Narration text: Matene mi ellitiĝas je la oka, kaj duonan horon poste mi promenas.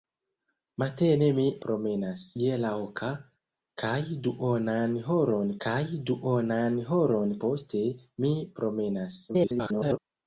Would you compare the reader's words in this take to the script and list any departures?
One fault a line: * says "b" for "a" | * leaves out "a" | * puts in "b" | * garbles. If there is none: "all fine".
* says "promenas" for "ellitiĝas"
* puts in "kaj duonan horon"
* garbles